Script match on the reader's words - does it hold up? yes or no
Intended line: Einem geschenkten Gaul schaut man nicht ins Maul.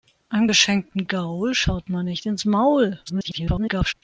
no